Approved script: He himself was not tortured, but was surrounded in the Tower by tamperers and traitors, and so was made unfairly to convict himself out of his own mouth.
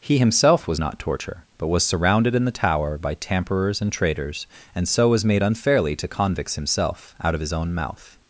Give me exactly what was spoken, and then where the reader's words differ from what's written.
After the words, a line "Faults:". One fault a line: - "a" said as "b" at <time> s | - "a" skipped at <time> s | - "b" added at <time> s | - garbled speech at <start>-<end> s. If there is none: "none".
He himself was not torture, but was surrounded in the Tower by tamperers and traitors, and so was made unfairly to convicts himself out of his own mouth.
Faults:
- "tortured" said as "torture" at 1.0 s
- "convict" said as "convicts" at 6.1 s